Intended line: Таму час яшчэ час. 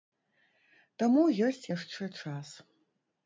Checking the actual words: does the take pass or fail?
fail